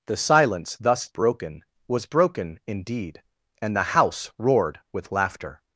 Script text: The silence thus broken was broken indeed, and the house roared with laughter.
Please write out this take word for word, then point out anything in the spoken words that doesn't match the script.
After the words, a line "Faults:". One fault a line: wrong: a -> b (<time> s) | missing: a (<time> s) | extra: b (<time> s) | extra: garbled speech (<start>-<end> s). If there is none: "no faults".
The silence thus broken was broken indeed, and the house roared with laughter.
Faults:
no faults